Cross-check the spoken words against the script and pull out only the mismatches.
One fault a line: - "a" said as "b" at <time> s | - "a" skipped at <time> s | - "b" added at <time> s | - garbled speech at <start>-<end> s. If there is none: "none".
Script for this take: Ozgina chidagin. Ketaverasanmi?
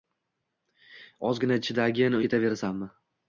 none